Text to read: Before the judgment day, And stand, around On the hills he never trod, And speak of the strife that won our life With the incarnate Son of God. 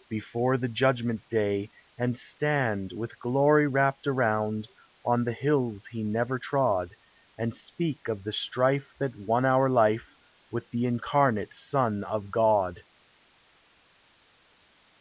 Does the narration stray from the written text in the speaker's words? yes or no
yes